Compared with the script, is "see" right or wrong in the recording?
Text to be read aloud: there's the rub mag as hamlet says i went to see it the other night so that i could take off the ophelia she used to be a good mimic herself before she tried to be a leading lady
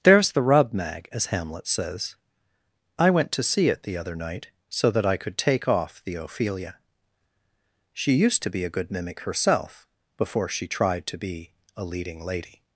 right